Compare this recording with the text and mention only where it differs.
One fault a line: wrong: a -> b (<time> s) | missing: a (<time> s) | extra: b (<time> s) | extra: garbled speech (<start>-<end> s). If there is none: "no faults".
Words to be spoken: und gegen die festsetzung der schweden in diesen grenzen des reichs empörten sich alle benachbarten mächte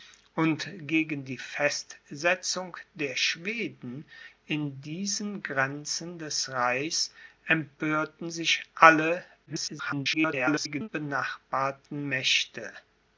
extra: garbled speech (9.5-10.9 s)